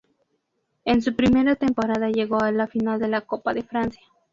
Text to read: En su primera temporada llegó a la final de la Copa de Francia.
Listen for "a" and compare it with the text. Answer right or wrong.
right